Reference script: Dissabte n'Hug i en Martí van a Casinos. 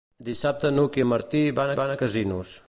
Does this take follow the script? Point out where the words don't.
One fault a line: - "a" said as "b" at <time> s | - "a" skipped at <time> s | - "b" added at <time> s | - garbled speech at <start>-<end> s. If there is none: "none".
- "van" added at 1.8 s